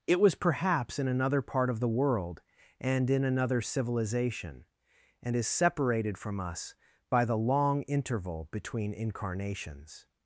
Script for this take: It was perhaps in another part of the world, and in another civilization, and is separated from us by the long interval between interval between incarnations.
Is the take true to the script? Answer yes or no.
no